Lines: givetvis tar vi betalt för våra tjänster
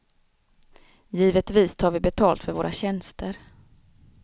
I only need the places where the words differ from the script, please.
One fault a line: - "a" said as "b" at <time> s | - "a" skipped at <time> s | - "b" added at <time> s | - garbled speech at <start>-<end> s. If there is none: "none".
none